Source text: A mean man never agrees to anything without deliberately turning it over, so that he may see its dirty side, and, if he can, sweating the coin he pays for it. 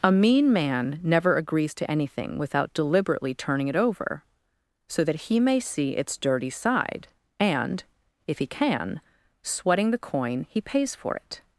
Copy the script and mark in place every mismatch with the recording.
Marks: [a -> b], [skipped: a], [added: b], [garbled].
A mean man never agrees to anything without deliberately turning it over, so that he may see its dirty side, and, if he can, sweating the coin he pays for it.